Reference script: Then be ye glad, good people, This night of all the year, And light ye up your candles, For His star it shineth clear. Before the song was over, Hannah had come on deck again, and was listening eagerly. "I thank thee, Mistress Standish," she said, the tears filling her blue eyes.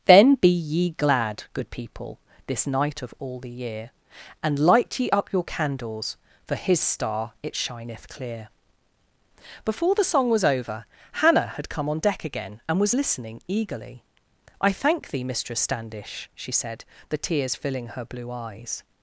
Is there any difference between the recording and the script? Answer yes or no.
no